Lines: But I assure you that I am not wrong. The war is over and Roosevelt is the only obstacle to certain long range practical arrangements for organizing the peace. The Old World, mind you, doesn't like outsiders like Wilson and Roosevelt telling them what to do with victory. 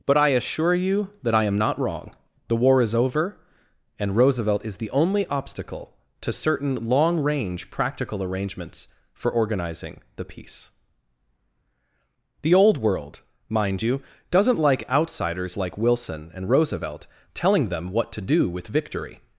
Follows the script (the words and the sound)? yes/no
yes